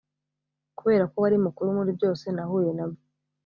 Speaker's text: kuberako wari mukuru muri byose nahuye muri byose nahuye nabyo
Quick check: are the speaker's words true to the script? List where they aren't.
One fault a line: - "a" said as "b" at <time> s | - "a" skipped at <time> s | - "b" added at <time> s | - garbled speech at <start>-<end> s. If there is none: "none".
- "muri byose nahuye" skipped at 2.7 s